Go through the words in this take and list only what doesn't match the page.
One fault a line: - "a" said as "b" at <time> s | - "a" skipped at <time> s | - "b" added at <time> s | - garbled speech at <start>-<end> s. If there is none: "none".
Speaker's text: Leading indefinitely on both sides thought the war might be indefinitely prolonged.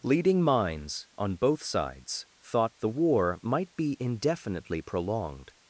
- "indefinitely" said as "minds" at 0.4 s